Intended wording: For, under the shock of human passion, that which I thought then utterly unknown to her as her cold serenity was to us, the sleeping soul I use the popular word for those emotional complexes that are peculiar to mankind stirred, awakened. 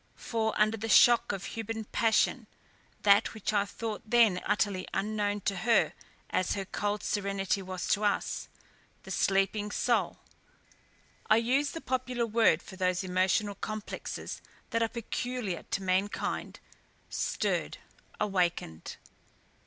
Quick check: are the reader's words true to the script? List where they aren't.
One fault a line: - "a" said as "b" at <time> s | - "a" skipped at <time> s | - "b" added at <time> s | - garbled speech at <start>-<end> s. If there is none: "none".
none